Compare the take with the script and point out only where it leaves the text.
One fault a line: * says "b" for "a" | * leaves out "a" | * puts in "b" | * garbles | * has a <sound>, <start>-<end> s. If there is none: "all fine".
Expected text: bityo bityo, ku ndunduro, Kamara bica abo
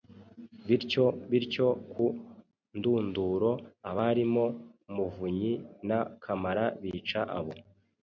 * puts in "abarimo Muvunyi na"